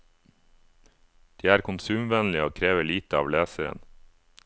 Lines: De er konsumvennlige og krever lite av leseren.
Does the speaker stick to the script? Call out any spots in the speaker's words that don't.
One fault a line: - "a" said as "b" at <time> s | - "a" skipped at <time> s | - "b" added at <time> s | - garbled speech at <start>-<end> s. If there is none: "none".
none